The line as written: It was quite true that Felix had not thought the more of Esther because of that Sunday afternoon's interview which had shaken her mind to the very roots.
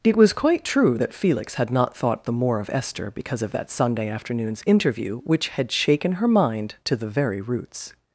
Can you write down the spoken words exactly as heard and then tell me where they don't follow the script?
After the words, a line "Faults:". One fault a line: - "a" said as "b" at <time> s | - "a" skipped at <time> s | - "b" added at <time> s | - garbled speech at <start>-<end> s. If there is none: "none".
It was quite true that Felix had not thought the more of Esther because of that Sunday afternoon's interview which had shaken her mind to the very roots.
Faults:
none